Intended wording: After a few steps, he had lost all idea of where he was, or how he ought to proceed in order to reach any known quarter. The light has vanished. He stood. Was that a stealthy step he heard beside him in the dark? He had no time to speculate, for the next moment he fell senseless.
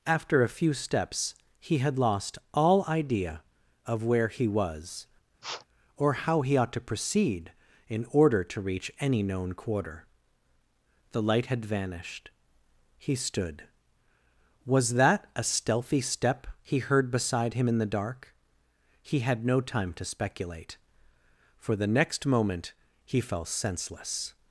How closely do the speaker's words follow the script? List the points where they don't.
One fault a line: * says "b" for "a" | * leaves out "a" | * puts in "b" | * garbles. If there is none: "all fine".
* says "had" for "has"